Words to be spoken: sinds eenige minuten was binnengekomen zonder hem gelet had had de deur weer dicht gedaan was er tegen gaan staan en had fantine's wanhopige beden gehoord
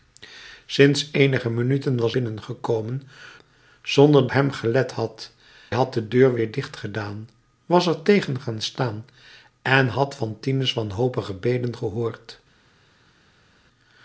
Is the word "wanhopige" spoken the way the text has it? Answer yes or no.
yes